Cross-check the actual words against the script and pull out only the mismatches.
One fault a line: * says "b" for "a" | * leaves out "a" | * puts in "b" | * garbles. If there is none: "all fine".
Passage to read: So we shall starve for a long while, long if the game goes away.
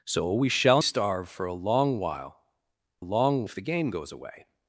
all fine